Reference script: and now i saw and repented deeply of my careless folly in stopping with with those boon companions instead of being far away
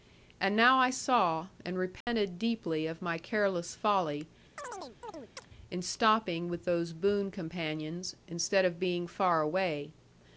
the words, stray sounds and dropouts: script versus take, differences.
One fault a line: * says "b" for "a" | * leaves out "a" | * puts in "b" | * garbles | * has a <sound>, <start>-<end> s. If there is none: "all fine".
* has a dropout, 2.0-2.1 s
* has a chirp, 4.6-5.5 s
* leaves out "with"